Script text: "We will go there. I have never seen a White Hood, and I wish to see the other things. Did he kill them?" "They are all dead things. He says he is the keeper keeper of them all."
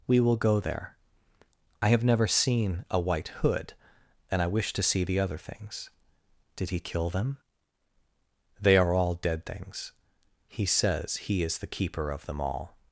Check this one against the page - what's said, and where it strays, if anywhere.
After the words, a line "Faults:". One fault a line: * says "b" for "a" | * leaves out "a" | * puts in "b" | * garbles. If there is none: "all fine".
"We will go there. I have never seen a White Hood, and I wish to see the other things. Did he kill them?" "They are all dead things. He says he is the keeper of them all."
Faults:
* leaves out "keeper"